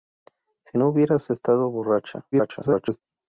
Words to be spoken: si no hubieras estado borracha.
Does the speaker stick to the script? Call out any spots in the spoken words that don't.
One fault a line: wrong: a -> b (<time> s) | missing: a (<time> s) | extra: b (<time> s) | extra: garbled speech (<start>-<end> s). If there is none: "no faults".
extra: garbled speech (2.3-3.0 s)